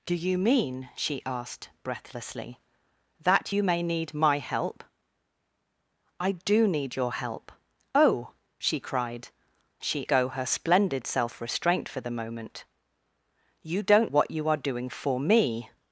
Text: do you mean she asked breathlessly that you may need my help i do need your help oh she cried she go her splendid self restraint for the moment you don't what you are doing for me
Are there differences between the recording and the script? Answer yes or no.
no